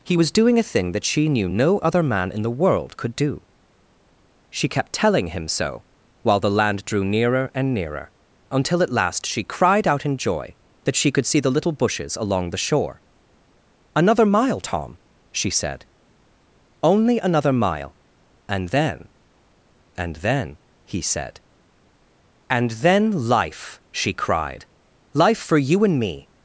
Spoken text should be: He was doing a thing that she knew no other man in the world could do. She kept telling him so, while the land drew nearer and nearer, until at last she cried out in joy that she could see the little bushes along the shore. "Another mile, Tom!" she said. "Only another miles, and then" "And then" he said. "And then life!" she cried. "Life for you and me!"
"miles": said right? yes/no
no